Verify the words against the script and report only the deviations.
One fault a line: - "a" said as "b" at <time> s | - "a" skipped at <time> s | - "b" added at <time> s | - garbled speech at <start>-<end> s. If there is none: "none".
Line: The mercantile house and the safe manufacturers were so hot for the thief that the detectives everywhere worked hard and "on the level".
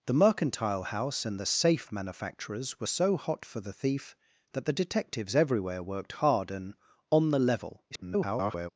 - garbled speech at 7.9-8.7 s